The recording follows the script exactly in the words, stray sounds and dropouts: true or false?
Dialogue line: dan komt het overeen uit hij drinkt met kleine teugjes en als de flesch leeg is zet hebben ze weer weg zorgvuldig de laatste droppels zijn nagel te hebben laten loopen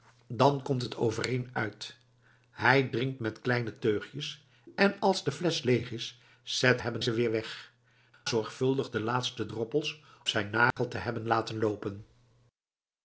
false